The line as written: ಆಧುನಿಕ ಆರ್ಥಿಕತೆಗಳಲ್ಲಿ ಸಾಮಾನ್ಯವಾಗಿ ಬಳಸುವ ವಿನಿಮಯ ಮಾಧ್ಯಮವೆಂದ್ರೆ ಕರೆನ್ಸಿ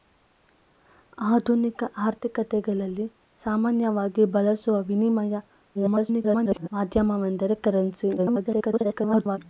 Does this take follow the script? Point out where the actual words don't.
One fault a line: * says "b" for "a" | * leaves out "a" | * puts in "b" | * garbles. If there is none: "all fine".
* garbles
* garbles